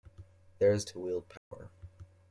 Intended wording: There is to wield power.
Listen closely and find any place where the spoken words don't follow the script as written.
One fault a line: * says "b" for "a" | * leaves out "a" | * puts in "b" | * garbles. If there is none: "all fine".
all fine